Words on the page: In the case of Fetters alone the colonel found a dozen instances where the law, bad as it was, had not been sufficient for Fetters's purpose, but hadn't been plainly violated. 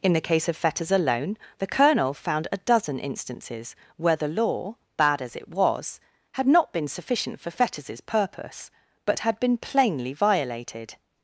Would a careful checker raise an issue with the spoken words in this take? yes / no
yes